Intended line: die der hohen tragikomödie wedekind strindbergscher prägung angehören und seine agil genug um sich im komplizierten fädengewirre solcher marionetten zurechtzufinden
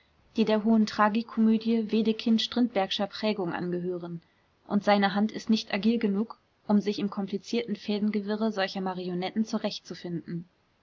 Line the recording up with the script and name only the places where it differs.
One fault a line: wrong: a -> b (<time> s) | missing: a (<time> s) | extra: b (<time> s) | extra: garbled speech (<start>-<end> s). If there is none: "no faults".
extra: hand ist nicht (5.1 s)